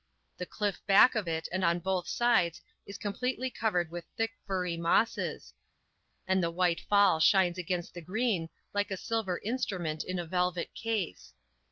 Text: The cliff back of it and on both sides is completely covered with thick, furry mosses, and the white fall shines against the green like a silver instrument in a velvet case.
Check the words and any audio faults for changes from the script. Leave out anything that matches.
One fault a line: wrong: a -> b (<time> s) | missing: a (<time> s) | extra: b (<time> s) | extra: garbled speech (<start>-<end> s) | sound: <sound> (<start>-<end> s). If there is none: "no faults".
no faults